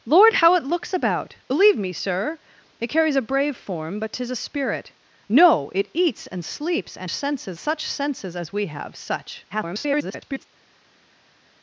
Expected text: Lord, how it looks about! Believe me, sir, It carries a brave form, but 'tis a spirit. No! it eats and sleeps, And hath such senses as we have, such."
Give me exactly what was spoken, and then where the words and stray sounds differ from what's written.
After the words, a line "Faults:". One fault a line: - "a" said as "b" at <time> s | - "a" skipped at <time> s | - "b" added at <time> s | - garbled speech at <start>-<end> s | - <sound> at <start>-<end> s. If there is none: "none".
Lord, how it looks about! Believe me, sir, It carries a brave form, but 'tis a spirit. No! it eats and sleeps, And senses such senses as we have, such." [garbled]
Faults:
- "hath" said as "senses" at 7.1 s
- garbled speech at 9.5-10.5 s